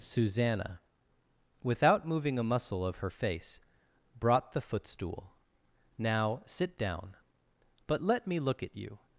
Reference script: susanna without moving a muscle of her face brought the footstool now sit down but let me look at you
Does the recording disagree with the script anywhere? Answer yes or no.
no